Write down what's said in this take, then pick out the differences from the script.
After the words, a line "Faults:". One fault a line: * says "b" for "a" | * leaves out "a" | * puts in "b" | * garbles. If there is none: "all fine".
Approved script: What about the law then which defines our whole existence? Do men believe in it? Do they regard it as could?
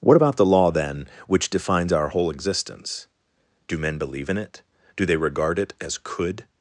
What about the law then which defines our whole existence? Do men believe in it? Do they regard it as could?
Faults:
all fine